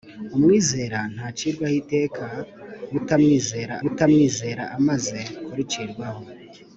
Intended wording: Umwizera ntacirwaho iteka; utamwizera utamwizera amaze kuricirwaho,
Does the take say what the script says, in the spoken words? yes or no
yes